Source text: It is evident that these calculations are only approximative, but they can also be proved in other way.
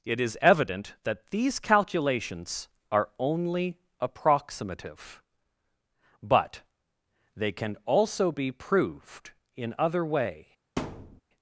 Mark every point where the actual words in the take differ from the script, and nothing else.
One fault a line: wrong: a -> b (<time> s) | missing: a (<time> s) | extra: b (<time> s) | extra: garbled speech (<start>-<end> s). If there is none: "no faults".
no faults